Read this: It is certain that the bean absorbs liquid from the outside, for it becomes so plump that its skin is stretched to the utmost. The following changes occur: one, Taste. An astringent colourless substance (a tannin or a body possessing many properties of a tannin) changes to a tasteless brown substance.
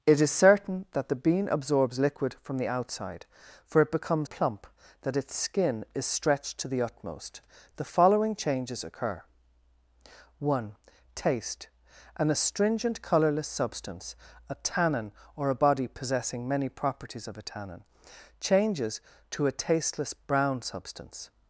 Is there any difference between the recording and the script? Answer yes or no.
yes